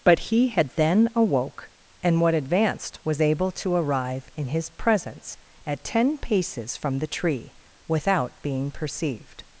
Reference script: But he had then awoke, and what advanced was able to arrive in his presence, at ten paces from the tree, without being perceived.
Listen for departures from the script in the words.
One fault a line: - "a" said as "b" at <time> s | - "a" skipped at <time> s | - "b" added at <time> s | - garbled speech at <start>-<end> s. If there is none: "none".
none